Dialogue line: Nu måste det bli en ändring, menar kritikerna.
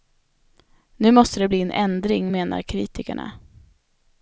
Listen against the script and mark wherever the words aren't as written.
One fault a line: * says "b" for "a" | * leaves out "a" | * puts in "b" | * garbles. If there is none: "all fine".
all fine